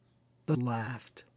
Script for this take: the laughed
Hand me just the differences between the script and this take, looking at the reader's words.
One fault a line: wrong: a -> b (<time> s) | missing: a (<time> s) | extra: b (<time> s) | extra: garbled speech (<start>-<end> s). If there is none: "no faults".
no faults